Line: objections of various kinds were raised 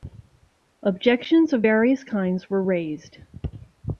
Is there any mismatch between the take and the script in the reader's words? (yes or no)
no